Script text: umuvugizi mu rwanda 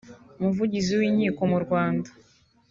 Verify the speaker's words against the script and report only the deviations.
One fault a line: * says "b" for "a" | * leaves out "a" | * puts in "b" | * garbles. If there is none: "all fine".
* puts in "w'inkiko"